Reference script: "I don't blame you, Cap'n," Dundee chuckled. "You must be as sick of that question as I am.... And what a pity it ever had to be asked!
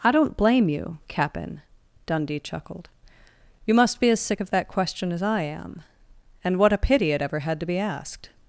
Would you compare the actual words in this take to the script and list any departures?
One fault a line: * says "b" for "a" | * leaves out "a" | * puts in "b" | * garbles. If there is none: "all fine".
all fine